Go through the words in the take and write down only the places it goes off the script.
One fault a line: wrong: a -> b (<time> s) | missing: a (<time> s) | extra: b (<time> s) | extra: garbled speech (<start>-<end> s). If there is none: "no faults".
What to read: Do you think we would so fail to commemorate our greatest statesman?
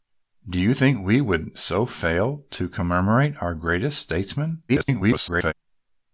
extra: garbled speech (4.7-5.5 s)